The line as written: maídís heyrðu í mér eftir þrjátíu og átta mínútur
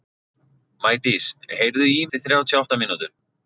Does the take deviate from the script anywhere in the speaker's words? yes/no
yes